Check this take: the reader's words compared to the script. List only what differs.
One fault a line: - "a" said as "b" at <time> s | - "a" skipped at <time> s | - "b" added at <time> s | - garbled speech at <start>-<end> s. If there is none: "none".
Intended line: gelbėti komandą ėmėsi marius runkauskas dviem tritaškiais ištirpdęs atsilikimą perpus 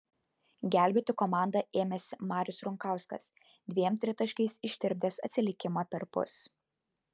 none